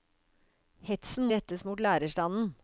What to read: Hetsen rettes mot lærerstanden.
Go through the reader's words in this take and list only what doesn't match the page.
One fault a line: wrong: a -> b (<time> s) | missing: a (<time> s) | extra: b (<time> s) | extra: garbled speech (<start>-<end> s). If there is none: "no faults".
no faults